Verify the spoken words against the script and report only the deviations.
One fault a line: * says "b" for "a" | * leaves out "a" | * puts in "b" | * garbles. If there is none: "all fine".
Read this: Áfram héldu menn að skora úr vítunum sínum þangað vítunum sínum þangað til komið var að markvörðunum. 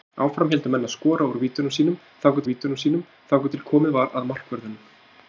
all fine